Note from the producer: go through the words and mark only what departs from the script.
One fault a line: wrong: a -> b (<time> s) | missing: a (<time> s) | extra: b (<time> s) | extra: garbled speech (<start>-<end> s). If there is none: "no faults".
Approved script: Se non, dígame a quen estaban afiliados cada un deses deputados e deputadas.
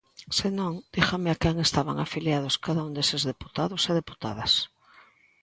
no faults